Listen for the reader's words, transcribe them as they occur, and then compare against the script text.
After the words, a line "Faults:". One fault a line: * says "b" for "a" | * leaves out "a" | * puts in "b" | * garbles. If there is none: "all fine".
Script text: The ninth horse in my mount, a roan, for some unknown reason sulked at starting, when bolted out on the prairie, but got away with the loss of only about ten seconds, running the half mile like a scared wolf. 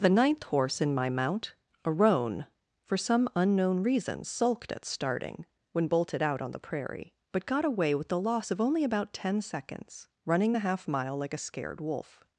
The ninth horse in my mount, a roan, for some unknown reason sulked at starting, when bolted out on the prairie, but got away with the loss of only about ten seconds, running the half mile like a scared wolf.
Faults:
all fine